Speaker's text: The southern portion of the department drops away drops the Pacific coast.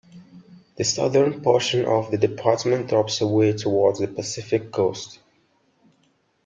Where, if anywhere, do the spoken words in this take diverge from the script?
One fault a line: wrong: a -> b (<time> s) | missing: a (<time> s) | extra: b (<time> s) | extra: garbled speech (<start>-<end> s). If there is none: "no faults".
wrong: drops -> towards (3.5 s)